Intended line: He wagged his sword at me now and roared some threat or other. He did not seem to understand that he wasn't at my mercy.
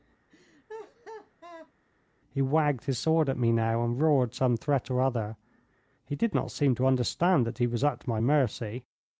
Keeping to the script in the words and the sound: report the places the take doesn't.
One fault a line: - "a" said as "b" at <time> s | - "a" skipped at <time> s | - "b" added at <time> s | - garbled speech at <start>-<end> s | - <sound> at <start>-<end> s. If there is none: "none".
- laugh at 0.3-1.7 s
- "wasn't" said as "was" at 7.7 s